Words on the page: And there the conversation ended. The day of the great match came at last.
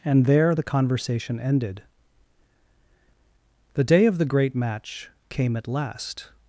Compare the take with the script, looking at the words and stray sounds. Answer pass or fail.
pass